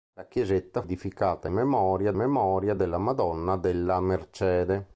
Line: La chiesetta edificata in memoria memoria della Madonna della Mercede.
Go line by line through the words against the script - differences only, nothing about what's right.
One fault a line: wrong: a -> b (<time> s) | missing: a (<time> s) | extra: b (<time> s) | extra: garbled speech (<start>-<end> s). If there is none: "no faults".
no faults